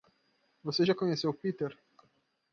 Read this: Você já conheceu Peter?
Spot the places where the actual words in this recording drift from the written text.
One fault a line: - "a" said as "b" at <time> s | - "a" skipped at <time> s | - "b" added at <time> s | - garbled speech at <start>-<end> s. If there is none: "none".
none